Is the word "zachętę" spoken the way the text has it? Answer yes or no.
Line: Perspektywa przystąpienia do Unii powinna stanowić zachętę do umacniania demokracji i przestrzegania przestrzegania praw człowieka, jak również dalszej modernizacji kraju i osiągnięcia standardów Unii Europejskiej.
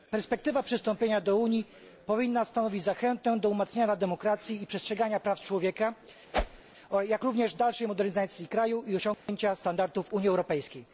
yes